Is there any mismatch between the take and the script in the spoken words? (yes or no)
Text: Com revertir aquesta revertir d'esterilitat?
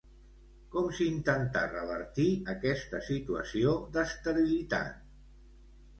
yes